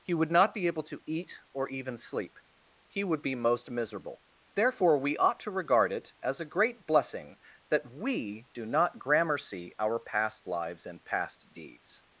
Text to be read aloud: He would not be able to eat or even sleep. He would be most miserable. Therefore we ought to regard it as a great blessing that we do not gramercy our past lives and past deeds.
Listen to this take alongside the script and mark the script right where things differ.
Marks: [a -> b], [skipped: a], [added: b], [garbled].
He would not be able to eat or even sleep. He would be most miserable. Therefore we ought to regard it as a great blessing that we do not gramercy our past lives and past deeds.